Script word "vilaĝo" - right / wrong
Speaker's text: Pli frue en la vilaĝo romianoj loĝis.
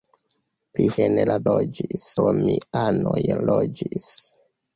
wrong